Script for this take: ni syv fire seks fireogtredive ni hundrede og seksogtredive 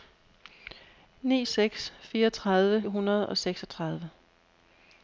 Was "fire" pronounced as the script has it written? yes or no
no